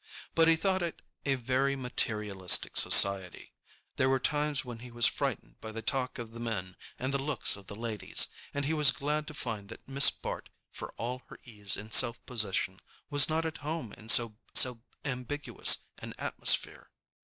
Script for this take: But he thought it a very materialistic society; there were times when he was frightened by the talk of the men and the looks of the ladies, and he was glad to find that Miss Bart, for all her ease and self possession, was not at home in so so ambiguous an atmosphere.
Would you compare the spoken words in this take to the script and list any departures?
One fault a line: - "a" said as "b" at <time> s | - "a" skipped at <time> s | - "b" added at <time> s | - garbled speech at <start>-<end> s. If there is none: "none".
none